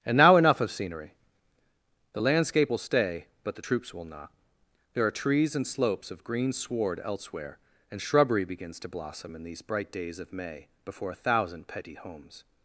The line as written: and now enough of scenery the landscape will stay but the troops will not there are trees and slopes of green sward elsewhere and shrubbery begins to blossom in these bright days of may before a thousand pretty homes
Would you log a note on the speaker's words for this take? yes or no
yes